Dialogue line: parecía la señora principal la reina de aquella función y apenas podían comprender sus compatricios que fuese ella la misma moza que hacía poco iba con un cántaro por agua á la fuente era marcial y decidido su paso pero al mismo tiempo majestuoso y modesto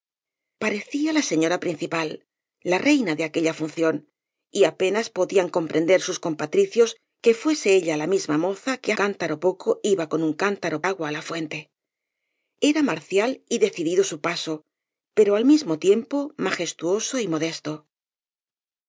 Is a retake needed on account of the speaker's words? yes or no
yes